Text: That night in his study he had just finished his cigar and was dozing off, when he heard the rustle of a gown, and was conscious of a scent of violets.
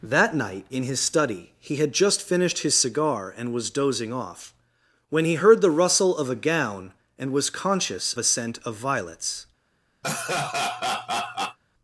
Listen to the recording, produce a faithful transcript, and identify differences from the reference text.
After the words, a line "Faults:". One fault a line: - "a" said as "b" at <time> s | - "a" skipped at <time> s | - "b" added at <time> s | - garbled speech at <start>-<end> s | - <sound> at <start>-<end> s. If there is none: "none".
That night in his study he had just finished his cigar and was dozing off, when he heard the rustle of a gown, and was conscious a scent of violets.
Faults:
- "of" skipped at 8.2 s
- laugh at 10.0-11.6 s